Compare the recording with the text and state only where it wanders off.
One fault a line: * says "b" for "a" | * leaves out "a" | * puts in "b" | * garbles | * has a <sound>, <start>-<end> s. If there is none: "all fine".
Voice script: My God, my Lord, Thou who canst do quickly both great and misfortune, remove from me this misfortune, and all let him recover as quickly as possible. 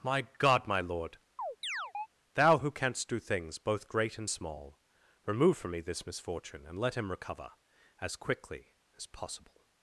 * has a chirp, 1.4-2.1 s
* says "things" for "quickly"
* says "small" for "misfortune"
* leaves out "all"